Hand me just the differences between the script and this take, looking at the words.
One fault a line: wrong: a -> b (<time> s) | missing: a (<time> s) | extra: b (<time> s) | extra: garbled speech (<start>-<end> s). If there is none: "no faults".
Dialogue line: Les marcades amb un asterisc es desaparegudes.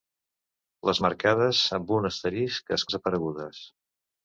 no faults